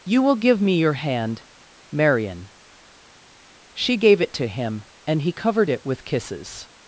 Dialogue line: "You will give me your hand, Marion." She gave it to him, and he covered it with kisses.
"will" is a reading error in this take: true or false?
false